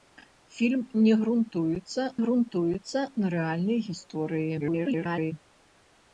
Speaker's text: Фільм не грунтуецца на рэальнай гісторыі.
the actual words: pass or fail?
fail